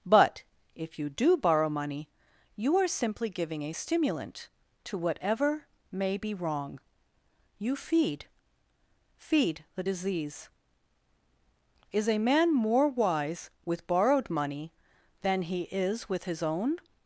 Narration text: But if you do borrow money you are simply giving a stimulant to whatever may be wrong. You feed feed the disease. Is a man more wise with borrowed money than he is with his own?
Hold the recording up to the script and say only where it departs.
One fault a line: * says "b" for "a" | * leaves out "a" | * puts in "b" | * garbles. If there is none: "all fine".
all fine